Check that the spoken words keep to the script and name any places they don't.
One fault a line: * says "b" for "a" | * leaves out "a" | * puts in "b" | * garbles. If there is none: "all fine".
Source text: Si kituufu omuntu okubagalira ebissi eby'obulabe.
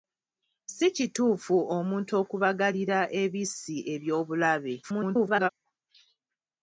* garbles